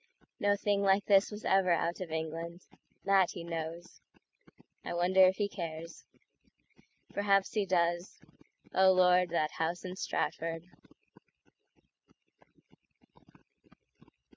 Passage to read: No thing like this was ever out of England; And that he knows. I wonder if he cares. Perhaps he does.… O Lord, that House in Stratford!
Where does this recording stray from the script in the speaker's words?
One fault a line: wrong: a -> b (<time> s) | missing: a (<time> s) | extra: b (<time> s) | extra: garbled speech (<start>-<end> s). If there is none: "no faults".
missing: And (2.6 s)